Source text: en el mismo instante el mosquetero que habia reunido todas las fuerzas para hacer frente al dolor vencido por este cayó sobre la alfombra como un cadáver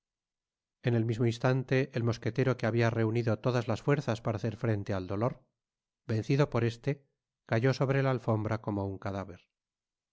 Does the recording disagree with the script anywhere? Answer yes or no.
no